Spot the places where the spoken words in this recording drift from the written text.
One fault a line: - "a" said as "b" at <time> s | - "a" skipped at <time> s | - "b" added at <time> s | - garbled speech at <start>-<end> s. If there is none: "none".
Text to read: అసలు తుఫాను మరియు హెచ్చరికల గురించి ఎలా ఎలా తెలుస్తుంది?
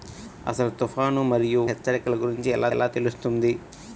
none